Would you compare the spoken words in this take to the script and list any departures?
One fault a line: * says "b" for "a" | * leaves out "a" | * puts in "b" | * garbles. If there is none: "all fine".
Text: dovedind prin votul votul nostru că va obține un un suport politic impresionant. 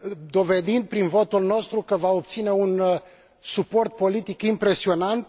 * leaves out "votul"
* leaves out "un"